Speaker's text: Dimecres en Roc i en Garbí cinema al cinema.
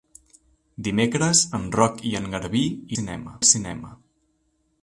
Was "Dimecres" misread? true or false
false